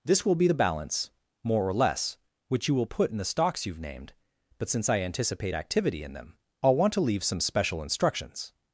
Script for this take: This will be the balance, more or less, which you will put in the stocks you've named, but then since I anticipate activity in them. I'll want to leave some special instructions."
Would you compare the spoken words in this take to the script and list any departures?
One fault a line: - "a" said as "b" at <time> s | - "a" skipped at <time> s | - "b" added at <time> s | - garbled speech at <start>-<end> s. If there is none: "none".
- "then" skipped at 4.7 s